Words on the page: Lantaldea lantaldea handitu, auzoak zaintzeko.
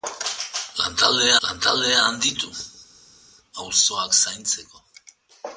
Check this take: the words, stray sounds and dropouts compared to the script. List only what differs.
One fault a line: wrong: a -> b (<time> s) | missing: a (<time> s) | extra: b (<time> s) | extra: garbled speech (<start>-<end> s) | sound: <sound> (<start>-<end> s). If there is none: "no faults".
no faults